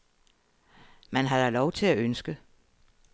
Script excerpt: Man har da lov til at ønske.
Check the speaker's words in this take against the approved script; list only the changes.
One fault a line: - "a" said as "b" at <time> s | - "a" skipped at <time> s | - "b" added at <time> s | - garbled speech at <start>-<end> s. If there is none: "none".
none